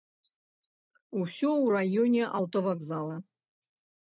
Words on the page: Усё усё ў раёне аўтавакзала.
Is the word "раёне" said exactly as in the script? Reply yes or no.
yes